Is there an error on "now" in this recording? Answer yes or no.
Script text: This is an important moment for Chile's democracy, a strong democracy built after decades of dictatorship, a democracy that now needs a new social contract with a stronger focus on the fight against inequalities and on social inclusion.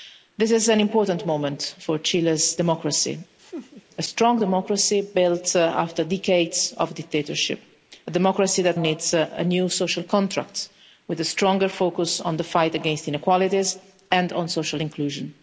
yes